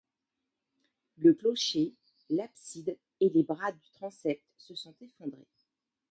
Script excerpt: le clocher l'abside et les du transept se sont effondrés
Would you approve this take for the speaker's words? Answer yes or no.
no